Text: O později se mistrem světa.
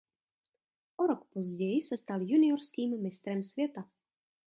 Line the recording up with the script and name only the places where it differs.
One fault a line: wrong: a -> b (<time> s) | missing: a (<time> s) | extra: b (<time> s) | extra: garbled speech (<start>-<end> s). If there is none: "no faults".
extra: rok (1.1 s)
extra: stal juniorským (1.9 s)